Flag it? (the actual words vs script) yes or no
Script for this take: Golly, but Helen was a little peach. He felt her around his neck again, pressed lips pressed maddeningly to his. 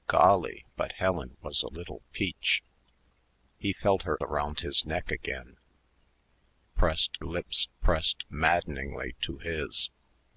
no